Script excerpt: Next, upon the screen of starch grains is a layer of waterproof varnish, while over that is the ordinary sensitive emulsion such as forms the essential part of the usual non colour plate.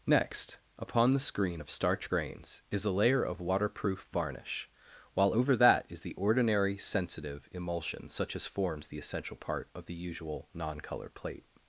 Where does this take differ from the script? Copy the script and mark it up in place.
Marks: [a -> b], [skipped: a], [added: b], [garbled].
Next, upon the screen of starch grains is a layer of waterproof varnish, while over that is the ordinary sensitive emulsion such as forms the essential part of the usual non colour plate.